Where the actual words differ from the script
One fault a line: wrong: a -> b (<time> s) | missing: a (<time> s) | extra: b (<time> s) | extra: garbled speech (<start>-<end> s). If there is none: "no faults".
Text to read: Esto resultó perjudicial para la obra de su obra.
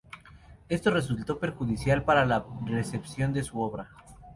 wrong: obra -> recepción (2.6 s)